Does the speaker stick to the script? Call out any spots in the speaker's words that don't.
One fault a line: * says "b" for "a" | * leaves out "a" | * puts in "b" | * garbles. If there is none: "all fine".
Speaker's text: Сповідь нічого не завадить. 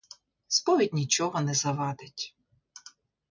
all fine